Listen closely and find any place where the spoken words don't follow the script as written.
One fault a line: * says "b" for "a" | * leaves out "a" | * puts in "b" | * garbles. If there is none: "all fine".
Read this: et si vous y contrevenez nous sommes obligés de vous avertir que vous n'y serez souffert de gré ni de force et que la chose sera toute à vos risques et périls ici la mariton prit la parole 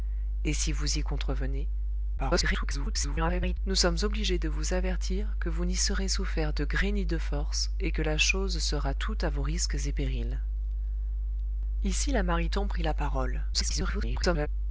* garbles
* garbles